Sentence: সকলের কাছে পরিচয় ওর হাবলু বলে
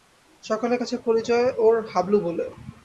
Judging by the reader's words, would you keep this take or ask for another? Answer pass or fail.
pass